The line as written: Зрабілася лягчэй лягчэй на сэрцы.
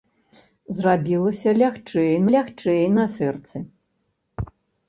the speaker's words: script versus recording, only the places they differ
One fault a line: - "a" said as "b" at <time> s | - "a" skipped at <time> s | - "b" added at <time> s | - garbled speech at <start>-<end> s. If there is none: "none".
none